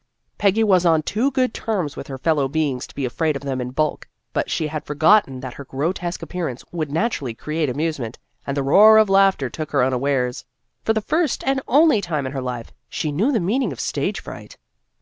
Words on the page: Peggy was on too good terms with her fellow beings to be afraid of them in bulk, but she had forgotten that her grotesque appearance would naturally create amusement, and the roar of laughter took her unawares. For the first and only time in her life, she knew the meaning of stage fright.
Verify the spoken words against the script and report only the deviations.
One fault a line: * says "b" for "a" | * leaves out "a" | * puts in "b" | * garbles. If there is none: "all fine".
all fine